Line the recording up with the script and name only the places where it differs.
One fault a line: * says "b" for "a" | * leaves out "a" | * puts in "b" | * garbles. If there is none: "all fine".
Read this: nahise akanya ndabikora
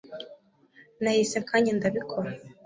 all fine